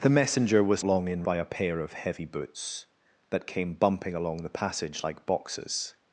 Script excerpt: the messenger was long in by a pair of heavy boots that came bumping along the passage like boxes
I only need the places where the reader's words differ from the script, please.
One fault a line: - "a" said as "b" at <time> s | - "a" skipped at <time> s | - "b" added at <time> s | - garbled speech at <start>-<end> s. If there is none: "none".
none